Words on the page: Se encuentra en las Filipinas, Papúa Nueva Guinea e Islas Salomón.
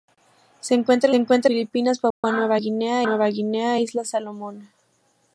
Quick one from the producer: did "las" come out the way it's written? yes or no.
no